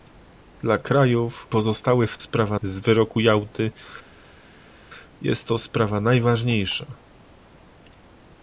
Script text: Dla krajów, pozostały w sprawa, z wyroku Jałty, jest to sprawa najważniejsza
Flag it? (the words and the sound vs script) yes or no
no